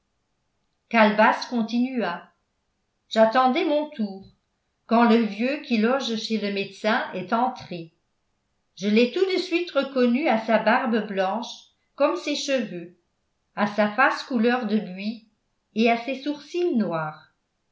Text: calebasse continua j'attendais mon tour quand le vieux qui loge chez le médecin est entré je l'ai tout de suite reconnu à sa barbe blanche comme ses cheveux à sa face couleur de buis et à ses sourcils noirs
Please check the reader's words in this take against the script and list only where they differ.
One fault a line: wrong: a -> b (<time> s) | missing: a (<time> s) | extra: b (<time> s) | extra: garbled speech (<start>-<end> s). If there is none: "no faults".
no faults